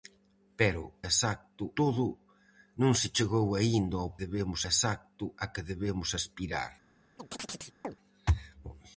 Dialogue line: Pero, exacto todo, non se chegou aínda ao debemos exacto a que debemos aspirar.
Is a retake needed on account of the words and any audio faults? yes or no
yes